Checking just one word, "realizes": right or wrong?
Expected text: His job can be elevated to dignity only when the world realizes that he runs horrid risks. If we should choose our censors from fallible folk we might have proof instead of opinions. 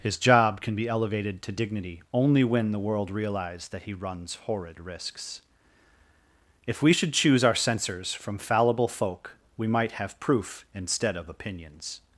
wrong